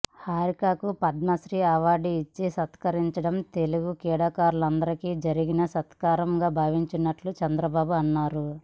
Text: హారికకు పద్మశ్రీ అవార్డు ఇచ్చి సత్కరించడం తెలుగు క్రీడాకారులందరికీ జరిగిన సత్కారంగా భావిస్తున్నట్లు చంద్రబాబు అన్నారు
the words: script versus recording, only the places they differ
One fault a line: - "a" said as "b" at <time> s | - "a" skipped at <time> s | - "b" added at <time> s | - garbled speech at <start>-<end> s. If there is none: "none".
none